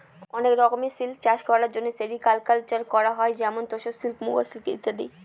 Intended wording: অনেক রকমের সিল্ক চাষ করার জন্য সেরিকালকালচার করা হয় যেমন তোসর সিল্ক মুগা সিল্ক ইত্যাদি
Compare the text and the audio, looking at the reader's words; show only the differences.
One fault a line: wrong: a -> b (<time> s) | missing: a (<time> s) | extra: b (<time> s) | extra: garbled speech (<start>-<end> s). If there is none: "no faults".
no faults